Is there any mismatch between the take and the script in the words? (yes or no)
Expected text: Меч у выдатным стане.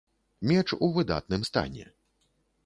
no